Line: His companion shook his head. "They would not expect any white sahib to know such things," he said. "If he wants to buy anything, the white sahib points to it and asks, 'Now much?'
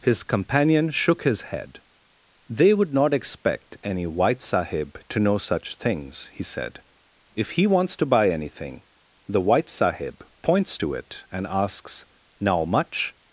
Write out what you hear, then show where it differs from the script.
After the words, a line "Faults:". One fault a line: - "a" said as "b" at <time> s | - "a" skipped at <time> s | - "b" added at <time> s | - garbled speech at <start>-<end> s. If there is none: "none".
His companion shook his head. "They would not expect any white sahib to know such things," he said. "If he wants to buy anything, the white sahib points to it and asks, 'Now much?'
Faults:
none